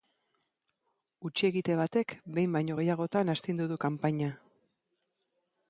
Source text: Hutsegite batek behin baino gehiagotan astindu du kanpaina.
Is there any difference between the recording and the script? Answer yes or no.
no